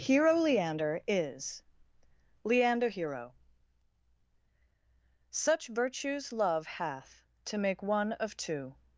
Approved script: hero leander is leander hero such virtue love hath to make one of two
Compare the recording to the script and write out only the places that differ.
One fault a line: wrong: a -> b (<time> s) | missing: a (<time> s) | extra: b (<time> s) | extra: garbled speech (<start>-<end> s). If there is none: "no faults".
wrong: virtue -> virtues (5.7 s)